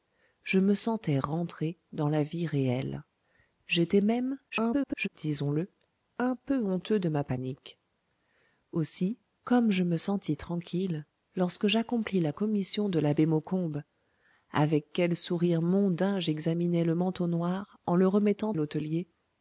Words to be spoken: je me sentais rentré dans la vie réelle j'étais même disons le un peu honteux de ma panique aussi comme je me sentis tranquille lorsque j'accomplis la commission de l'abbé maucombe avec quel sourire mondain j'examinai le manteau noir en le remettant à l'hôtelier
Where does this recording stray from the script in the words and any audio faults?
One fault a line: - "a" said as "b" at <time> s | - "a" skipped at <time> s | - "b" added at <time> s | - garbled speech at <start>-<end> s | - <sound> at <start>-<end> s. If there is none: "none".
- garbled speech at 4.5-5.1 s
- "à" skipped at 18.5 s